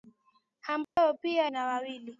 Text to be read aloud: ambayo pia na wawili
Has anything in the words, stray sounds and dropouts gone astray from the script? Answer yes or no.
yes